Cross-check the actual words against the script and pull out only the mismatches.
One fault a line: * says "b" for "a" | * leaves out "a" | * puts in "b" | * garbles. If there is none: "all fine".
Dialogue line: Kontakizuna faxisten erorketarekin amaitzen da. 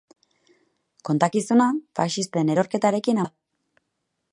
* leaves out "amaitzen"